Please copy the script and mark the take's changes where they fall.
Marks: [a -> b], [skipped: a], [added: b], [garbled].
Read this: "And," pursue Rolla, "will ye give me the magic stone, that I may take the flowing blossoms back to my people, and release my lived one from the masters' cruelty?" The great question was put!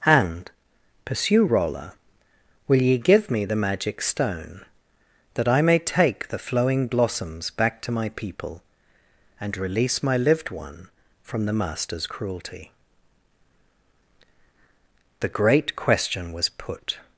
"And," pursue Rolla, "will ye give me the magic stone, that I may take the flowing blossoms back to my people, and release my lived one from the masters' cruelty?" The great question was put!